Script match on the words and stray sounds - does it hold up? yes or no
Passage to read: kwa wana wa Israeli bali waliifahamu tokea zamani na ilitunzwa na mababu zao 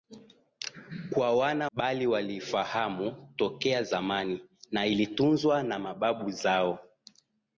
no